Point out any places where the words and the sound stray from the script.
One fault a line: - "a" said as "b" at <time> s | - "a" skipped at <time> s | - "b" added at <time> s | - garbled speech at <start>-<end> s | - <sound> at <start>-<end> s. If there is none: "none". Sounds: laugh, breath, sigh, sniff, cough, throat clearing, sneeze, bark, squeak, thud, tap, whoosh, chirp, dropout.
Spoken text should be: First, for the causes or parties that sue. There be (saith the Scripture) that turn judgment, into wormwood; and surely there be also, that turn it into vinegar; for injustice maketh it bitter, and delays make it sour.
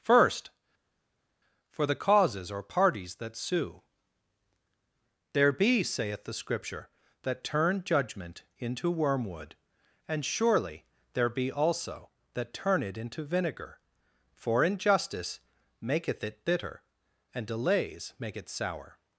none